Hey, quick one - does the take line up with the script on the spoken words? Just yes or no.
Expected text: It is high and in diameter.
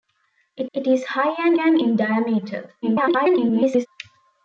no